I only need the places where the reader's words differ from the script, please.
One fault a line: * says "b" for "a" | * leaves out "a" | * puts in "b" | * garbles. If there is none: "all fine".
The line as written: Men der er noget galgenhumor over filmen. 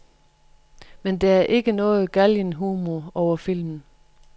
* puts in "ikke"